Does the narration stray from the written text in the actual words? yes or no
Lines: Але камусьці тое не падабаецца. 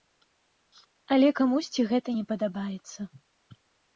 yes